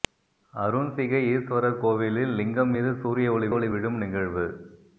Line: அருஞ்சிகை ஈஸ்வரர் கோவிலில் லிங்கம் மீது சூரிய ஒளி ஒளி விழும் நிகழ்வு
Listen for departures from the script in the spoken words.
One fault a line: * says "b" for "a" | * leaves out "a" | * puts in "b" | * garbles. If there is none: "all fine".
all fine